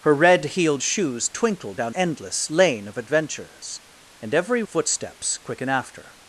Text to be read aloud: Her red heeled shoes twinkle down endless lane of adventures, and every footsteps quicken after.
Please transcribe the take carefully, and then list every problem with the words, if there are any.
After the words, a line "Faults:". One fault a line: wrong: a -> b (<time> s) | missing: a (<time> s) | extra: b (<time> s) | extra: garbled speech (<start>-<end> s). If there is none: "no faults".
Her red heeled shoes twinkle down endless lane of adventures, and every footsteps quicken after.
Faults:
no faults